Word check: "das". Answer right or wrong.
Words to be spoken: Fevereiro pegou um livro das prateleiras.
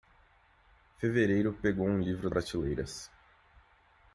wrong